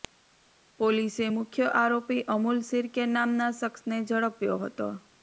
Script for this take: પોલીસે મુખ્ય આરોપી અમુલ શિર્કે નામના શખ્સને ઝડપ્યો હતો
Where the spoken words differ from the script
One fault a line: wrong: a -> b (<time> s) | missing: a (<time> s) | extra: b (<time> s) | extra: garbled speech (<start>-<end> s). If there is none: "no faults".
no faults